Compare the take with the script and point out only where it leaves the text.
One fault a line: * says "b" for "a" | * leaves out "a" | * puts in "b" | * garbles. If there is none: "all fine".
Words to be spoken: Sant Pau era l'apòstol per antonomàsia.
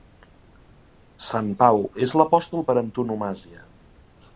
* says "és" for "era"